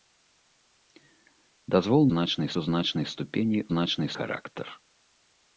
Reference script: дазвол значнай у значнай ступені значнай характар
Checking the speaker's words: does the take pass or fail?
pass